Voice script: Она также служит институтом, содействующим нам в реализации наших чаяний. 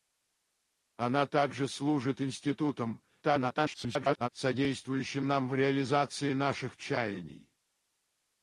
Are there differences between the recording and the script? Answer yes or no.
yes